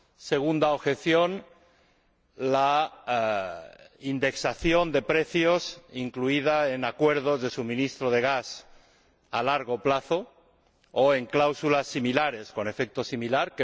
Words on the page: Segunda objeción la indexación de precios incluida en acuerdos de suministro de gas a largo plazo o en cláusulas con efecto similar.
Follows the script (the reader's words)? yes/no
no